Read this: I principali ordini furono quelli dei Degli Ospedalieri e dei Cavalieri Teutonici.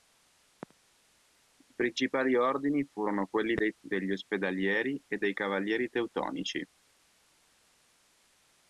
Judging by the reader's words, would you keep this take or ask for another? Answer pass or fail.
pass